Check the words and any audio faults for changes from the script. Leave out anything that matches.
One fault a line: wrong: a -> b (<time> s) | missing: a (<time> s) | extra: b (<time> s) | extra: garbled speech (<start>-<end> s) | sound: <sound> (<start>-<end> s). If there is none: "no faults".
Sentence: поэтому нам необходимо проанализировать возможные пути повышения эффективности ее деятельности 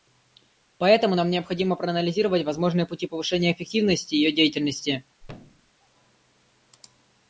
sound: thud (5.2-5.7 s)